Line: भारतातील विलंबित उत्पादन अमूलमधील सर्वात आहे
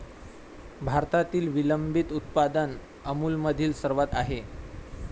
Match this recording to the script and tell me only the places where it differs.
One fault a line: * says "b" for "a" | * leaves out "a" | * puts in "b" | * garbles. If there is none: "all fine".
all fine